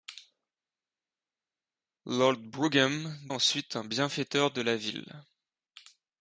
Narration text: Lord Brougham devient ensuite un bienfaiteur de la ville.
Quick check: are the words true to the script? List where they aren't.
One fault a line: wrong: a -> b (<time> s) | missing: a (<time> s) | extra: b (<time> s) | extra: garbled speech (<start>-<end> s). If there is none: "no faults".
missing: devient (3.2 s)